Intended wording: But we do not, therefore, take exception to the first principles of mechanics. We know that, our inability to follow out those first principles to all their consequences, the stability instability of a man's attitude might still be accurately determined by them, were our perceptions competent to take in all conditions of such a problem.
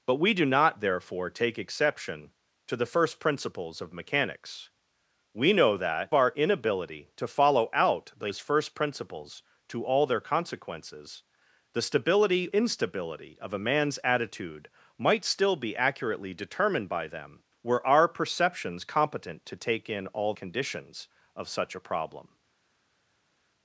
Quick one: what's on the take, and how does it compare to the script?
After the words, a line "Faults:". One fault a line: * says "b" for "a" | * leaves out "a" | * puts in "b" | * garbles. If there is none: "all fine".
But we do not, therefore, take exception to the first principles of mechanics. We know that, our inability to follow out those first principles to all their consequences, the stability instability of a man's attitude might still be accurately determined by them, were our perceptions competent to take in all conditions of such a problem.
Faults:
all fine